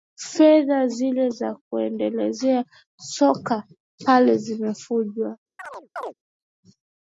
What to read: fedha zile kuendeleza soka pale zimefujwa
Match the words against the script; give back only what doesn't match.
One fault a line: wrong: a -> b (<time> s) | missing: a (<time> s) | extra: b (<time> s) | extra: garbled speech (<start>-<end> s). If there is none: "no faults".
extra: za (1.3 s)